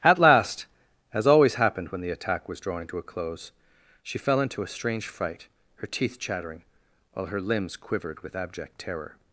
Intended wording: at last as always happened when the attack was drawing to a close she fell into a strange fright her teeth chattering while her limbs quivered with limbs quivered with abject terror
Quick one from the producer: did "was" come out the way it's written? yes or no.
yes